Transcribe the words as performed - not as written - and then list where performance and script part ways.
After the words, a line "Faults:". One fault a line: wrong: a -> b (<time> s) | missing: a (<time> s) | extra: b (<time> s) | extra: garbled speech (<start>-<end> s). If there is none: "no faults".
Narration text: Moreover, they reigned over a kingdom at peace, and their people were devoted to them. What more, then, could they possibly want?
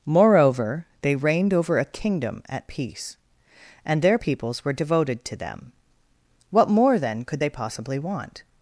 Moreover, they reigned over a kingdom at peace, and their peoples were devoted to them. What more, then, could they possibly want?
Faults:
wrong: people -> peoples (4.1 s)